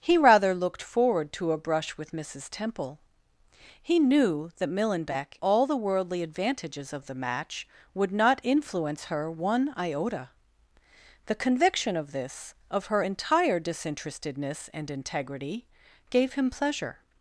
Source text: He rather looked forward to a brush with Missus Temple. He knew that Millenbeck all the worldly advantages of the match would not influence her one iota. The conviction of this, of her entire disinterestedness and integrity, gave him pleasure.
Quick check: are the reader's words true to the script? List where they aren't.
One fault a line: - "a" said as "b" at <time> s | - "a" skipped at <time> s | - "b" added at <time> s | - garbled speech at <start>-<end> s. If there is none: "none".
none